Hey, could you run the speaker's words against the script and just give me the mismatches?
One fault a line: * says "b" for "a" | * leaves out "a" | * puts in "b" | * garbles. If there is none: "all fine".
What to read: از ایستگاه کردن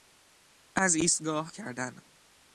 all fine